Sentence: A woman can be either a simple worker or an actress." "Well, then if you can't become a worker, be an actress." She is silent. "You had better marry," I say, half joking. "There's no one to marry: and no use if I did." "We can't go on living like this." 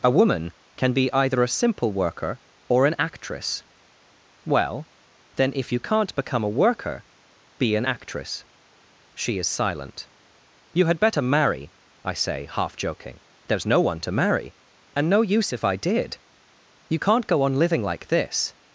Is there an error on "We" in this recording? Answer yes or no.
yes